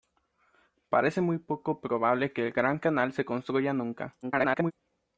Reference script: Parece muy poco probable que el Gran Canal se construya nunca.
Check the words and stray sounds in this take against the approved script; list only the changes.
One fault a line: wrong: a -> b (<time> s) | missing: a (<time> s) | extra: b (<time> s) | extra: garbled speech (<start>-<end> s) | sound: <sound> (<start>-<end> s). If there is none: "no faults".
extra: garbled speech (4.2-4.7 s)